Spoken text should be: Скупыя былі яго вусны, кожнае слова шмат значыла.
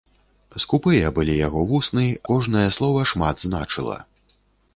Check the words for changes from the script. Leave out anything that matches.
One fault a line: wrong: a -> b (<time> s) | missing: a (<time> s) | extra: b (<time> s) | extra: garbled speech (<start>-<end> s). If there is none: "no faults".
no faults